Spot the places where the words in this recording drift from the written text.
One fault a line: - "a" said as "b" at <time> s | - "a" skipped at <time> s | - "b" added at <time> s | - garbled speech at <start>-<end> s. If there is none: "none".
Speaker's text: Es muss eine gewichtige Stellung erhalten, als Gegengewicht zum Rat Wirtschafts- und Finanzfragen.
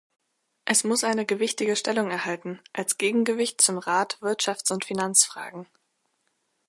none